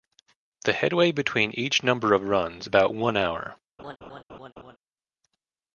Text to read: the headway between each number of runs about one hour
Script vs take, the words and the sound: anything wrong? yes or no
yes